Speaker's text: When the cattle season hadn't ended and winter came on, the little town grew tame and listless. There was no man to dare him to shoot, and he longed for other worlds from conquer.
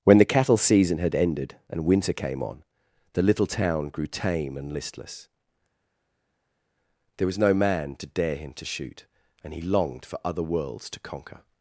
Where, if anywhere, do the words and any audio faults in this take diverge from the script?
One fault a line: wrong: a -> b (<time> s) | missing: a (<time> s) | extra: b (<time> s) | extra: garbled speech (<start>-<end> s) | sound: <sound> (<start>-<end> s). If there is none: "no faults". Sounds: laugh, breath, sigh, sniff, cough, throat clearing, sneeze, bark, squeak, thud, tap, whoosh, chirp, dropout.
wrong: hadn't -> had (1.0 s)
wrong: from -> to (10.9 s)